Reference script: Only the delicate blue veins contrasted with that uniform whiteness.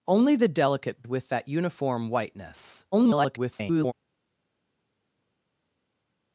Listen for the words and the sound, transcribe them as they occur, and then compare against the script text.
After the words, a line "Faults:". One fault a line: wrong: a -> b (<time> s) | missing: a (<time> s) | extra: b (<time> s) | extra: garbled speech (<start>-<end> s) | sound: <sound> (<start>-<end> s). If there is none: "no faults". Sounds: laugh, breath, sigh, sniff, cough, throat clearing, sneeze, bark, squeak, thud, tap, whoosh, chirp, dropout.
Only the delicate with that uniform whiteness. [garbled]
Faults:
missing: blue veins contrasted (1.0 s)
extra: garbled speech (2.9-3.9 s)